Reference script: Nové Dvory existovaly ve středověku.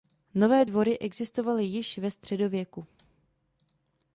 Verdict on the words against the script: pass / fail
fail